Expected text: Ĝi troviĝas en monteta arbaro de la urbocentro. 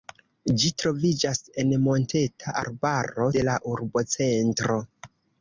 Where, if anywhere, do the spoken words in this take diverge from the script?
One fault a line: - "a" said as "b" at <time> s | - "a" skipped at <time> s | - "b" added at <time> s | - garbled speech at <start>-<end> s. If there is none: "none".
none